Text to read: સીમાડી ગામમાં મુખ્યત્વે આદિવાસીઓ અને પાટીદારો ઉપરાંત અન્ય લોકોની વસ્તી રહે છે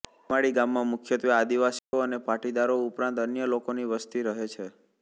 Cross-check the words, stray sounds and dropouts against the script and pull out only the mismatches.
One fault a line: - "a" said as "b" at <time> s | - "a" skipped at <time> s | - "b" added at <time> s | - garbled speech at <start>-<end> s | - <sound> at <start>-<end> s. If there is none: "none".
- dropout at 1.8-1.9 s